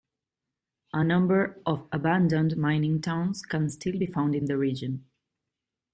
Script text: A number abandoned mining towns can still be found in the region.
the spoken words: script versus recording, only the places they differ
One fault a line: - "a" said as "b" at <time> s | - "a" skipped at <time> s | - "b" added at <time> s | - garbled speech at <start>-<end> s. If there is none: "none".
- "of" added at 1.7 s